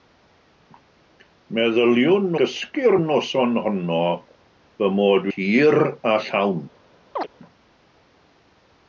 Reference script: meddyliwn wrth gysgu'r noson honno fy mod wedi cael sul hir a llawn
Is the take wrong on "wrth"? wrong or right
wrong